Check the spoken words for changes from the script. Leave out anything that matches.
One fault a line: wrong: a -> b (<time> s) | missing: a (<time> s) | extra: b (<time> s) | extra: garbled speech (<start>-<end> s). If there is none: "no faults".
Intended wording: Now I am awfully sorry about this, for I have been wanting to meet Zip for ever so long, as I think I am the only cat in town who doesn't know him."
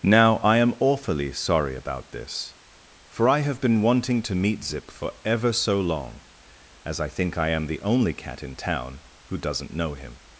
no faults